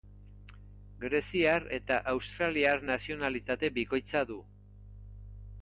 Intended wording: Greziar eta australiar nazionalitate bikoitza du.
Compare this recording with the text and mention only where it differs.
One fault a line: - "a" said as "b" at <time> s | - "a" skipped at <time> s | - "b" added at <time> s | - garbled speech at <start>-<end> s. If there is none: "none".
none